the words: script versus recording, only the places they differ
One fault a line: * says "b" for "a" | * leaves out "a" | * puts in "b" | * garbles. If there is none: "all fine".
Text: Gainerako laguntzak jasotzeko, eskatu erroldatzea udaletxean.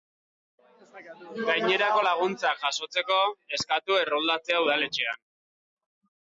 all fine